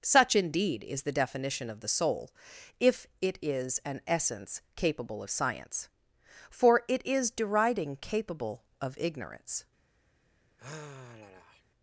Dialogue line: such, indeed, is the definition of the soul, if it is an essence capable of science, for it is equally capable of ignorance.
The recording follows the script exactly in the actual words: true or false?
false